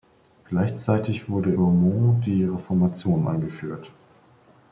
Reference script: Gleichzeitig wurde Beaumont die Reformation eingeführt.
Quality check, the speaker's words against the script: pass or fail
pass